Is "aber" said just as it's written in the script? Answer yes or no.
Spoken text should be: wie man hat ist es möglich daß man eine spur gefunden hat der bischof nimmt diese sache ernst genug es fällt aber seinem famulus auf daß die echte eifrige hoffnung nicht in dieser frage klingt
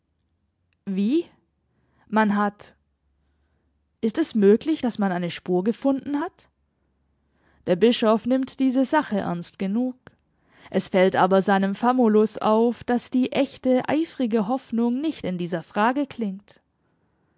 yes